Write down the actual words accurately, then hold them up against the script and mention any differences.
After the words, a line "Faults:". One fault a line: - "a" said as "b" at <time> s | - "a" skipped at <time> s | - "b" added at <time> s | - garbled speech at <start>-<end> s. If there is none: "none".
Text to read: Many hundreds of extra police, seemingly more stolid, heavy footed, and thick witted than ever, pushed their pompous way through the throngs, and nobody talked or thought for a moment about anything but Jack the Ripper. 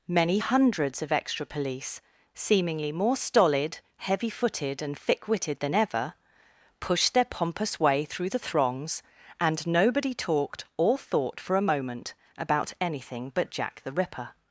Many hundreds of extra police, seemingly more stolid, heavy footed, and thick witted than ever, pushed their pompous way through the throngs, and nobody talked or thought for a moment about anything but Jack the Ripper.
Faults:
none